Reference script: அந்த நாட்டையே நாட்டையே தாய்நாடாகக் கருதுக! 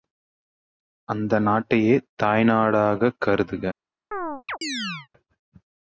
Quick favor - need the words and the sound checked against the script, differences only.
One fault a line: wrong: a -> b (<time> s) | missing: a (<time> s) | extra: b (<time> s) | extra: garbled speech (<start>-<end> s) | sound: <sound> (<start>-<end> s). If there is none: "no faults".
missing: நாட்டையே (1.9 s)
sound: chirp (4.1-5.1 s)